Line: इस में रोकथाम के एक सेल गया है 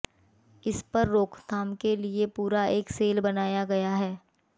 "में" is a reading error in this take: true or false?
true